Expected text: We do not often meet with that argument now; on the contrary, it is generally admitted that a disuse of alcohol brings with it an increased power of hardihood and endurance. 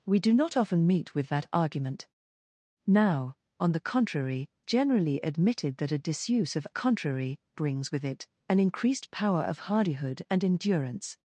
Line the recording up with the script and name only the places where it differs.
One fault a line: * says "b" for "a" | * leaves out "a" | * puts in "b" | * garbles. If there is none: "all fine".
* leaves out "it is"
* says "contrary" for "alcohol"